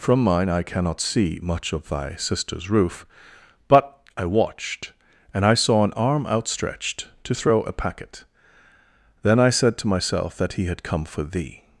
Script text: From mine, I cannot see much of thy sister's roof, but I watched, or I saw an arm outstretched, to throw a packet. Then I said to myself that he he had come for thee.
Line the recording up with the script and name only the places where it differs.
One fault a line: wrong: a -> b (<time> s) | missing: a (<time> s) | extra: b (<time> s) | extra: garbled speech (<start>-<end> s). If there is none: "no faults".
wrong: or -> and (5.3 s)
missing: he (10.7 s)